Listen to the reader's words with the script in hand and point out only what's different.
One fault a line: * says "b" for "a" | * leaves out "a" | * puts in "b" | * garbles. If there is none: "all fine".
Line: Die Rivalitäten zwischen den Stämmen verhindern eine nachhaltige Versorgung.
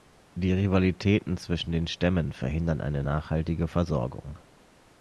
all fine